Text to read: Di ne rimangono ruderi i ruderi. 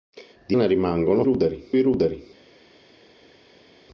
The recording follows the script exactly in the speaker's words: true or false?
true